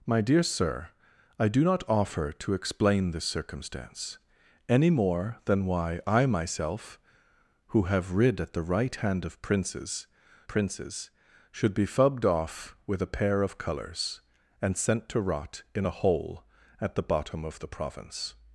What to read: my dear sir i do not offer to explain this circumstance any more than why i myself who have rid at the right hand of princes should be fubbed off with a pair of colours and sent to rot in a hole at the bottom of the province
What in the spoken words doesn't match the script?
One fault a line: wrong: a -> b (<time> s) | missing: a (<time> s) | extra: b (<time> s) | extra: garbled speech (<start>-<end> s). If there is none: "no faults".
extra: princes (10.5 s)